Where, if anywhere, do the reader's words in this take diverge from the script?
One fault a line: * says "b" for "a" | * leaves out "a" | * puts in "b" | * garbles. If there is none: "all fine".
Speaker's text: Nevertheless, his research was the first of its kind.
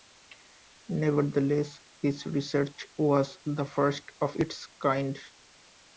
all fine